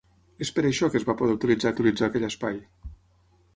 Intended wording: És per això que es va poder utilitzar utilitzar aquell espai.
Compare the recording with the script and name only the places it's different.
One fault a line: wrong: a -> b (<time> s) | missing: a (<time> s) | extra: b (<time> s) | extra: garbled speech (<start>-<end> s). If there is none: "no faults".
no faults